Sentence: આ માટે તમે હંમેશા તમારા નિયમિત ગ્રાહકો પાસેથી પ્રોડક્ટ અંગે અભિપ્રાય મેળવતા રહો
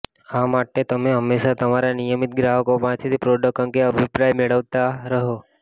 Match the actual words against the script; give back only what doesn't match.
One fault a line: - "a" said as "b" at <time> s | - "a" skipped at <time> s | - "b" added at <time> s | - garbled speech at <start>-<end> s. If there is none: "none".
none